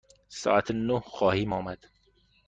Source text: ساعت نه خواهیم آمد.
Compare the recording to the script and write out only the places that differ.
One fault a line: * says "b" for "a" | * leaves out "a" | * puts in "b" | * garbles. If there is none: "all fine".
all fine